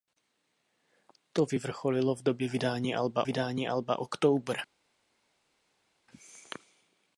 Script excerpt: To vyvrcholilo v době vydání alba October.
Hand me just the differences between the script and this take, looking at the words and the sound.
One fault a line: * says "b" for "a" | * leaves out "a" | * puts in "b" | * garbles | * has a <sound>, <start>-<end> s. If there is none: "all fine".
* puts in "vydání alba"